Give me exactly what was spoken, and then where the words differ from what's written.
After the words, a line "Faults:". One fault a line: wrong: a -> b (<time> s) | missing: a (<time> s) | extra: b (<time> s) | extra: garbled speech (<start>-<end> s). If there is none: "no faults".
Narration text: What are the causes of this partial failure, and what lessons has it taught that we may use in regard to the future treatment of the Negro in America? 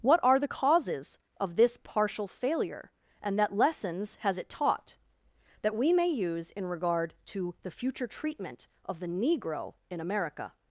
What are the causes of this partial failure, and that lessons has it taught that we may use in regard to the future treatment of the Negro in America?
Faults:
wrong: what -> that (3.4 s)